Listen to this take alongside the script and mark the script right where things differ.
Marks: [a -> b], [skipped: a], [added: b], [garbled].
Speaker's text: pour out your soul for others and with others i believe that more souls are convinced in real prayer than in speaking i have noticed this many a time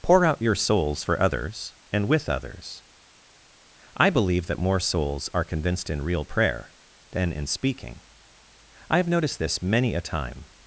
pour out your [soul -> souls] for others and with others i believe that more souls are convinced in real prayer than in speaking i have noticed this many a time